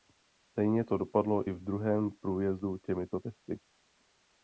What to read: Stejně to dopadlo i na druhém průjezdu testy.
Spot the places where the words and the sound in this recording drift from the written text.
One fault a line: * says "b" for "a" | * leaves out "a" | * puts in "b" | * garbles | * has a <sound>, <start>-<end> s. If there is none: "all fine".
* says "v" for "na"
* puts in "těmito"